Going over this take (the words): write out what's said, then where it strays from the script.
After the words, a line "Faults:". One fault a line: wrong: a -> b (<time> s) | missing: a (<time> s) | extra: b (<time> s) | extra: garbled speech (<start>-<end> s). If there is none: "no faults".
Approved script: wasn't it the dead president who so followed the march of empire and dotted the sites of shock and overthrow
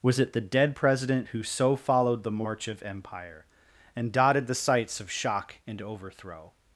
was it the dead president who so followed the march of empire and dotted the sites of shock and overthrow
Faults:
wrong: wasn't -> was (0.0 s)